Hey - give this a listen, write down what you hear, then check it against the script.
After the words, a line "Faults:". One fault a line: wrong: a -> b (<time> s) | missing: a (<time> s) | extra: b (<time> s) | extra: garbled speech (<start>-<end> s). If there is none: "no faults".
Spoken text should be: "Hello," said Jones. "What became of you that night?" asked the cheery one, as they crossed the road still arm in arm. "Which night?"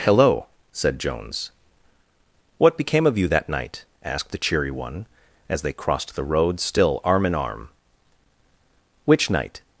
"Hello," said Jones. "What became of you that night?" asked the cheery one, as they crossed the road still arm in arm. "Which night?"
Faults:
no faults